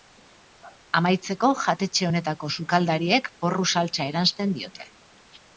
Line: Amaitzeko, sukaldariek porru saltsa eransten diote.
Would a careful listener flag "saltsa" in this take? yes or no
no